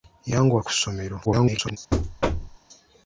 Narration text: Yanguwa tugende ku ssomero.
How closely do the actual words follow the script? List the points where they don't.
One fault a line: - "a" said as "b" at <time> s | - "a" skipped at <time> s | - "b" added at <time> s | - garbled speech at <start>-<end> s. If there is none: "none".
- "tugende" skipped at 0.6 s
- garbled speech at 1.2-1.8 s